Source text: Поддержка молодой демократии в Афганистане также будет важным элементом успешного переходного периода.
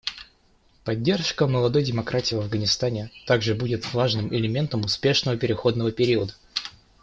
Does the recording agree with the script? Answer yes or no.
yes